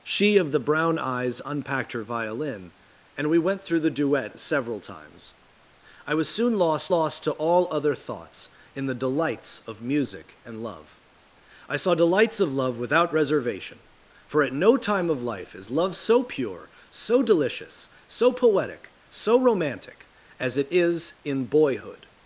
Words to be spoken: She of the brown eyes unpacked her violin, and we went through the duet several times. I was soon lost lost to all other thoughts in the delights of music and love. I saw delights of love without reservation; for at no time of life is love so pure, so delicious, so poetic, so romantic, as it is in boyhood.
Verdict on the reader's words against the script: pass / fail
pass